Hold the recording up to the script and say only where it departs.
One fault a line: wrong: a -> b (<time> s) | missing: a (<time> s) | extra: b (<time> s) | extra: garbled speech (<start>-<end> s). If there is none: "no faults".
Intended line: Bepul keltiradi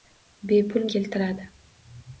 no faults